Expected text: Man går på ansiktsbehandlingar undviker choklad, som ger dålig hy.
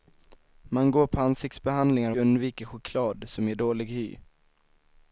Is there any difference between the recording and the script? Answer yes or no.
no